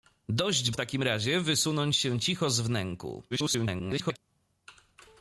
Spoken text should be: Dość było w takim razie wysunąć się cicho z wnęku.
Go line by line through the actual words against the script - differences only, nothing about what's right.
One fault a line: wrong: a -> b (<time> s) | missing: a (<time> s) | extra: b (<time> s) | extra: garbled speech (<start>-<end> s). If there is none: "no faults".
missing: było (0.7 s)
extra: garbled speech (3.3-4.2 s)